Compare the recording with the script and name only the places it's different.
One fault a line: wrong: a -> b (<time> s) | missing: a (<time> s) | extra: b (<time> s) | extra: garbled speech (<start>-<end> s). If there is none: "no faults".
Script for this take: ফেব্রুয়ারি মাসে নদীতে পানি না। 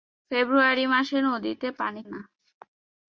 no faults